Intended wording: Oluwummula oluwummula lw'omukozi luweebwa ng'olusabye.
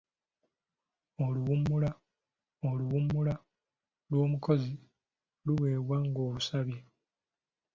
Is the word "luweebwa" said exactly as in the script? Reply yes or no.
yes